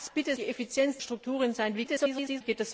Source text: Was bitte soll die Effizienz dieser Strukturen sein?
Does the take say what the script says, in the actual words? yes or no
no